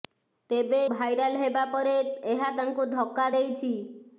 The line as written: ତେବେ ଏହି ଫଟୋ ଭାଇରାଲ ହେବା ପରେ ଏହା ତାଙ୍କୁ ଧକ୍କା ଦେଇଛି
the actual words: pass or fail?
fail